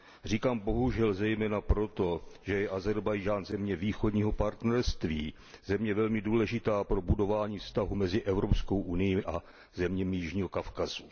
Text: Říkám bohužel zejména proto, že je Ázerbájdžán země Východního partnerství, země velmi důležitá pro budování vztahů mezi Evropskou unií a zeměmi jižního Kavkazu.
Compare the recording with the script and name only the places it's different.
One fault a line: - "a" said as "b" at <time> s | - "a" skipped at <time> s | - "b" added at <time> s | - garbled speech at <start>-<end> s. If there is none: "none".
none